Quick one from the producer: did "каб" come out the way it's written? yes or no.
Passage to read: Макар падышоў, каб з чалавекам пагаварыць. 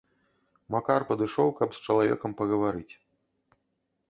yes